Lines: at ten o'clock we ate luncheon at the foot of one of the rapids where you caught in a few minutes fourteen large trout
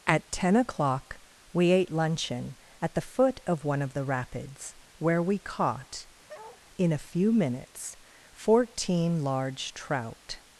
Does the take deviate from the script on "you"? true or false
true